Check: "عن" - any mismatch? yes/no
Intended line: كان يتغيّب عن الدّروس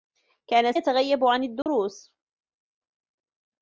no